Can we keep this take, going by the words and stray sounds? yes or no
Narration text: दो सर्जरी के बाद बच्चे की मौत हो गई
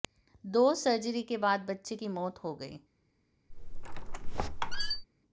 no